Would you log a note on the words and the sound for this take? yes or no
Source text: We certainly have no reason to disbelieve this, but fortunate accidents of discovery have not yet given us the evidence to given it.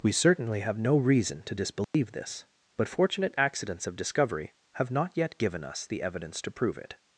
yes